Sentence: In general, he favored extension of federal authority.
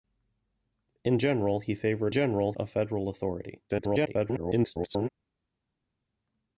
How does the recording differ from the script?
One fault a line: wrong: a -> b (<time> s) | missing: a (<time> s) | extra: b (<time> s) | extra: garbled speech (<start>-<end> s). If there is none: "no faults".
wrong: extension -> general (2.1 s)
extra: garbled speech (3.7-5.1 s)